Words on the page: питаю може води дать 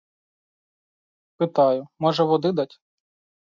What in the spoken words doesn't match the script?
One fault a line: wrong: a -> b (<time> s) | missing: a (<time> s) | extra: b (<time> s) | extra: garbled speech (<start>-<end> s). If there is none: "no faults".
no faults